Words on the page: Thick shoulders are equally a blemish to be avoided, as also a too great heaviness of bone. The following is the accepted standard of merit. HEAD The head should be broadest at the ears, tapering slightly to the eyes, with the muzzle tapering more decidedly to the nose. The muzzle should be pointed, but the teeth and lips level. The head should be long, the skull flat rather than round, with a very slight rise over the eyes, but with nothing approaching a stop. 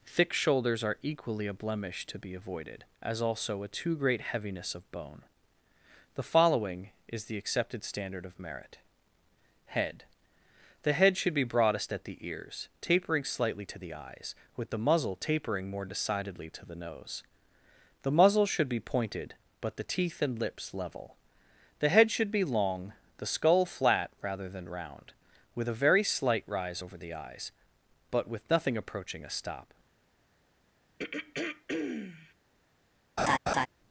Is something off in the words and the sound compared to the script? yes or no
yes